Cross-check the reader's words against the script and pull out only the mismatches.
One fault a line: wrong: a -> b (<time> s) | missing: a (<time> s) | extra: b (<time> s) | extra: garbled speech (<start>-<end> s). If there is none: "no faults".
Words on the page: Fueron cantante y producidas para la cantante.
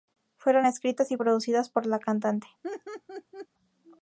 wrong: cantante -> escritas (0.6 s)
wrong: para -> por (1.7 s)